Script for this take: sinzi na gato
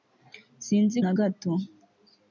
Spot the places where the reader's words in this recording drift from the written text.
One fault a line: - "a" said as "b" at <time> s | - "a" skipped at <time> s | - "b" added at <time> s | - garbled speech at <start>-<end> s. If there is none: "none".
none